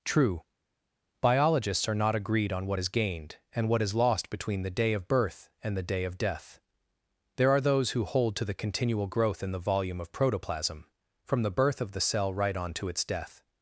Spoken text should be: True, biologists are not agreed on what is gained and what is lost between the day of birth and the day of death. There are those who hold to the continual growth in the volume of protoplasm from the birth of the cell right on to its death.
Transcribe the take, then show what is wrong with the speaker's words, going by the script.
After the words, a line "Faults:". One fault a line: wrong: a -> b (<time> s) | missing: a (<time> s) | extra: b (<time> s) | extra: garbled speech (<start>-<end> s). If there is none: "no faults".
True, biologists are not agreed on what is gained and what is lost between the day of birth and the day of death. There are those who hold to the continual growth in the volume of protoplasm from the birth of the cell right on to its death.
Faults:
no faults